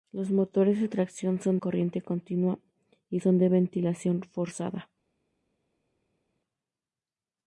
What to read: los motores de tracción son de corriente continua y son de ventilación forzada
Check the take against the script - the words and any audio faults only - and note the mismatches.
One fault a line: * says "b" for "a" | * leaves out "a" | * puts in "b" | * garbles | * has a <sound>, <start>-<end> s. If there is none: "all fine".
* leaves out "de"